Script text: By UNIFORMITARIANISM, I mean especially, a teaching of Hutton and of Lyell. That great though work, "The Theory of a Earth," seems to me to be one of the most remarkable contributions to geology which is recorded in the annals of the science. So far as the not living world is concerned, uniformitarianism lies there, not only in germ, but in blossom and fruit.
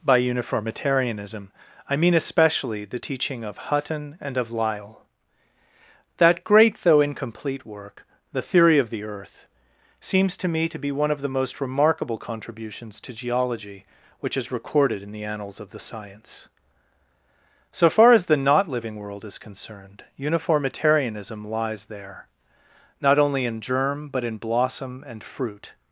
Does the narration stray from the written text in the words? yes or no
yes